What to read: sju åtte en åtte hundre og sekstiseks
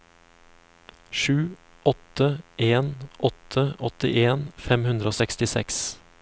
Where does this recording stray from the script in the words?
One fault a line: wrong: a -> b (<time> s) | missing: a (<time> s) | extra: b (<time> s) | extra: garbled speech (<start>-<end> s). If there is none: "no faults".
extra: åttien fem (3.9 s)